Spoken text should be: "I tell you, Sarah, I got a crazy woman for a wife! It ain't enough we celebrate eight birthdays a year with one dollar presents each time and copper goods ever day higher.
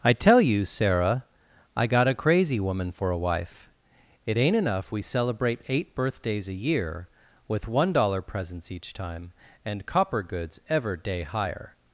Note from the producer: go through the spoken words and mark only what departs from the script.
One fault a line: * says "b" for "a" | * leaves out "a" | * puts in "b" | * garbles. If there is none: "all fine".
all fine